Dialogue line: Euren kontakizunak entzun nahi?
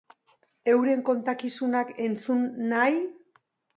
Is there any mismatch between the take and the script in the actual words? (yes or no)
no